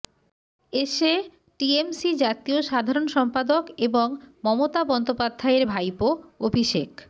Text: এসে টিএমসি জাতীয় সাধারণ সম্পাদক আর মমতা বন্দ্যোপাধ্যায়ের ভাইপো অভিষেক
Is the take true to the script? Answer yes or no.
no